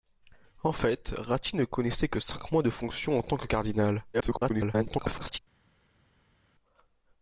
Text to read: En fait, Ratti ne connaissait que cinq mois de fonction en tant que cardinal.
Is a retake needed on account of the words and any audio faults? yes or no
yes